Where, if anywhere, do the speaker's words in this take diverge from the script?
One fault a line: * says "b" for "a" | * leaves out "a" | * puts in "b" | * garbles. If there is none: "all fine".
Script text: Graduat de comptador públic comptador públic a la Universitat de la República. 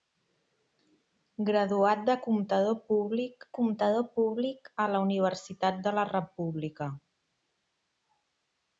all fine